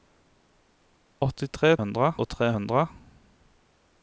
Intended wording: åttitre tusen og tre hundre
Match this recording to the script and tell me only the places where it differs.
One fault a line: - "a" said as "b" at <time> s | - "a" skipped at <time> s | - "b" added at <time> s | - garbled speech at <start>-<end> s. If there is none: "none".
- "tusen" said as "hundre" at 1.8 s